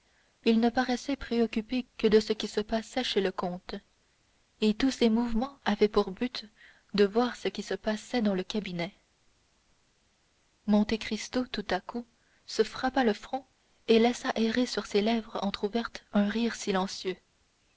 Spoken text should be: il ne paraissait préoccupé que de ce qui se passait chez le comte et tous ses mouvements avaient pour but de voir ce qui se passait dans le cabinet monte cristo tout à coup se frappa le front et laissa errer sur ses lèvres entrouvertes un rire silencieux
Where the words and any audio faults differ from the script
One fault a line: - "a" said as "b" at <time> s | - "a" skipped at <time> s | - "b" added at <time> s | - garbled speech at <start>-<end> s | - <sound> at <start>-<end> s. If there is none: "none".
none